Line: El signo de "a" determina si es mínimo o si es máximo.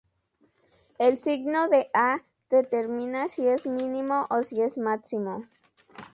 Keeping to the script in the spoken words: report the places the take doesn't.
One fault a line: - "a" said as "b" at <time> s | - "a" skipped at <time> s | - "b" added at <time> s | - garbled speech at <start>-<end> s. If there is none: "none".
none